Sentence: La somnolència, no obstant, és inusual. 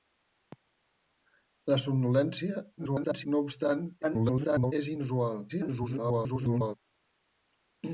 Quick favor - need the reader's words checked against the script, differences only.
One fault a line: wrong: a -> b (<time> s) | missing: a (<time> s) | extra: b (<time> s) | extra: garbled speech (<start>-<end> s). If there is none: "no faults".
extra: garbled speech (2.8-3.3 s)
extra: garbled speech (4.0-4.7 s)
extra: garbled speech (5.5-6.7 s)